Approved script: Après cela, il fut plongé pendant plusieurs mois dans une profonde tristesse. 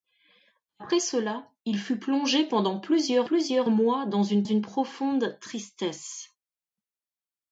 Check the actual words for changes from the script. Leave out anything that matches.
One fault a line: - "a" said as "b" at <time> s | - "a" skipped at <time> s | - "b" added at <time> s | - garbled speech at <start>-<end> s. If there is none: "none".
- "plusieurs" added at 3.2 s
- "une" added at 4.4 s